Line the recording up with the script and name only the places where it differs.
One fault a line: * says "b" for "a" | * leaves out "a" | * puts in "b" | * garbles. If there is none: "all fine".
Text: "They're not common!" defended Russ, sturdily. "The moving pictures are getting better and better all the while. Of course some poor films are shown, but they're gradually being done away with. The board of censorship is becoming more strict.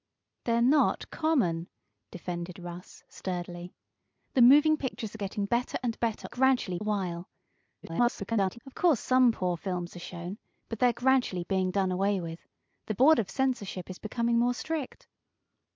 * says "gradually" for "all"
* garbles